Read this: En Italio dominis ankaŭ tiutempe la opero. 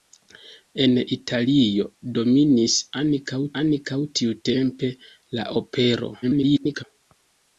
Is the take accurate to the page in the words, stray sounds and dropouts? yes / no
no